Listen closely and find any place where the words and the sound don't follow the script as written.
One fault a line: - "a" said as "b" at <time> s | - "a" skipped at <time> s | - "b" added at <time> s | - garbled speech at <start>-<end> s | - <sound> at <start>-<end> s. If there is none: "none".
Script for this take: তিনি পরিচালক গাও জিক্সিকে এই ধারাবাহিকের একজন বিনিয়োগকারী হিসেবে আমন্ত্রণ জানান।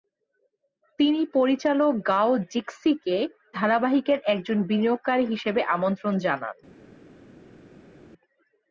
- "এই" skipped at 3.2 s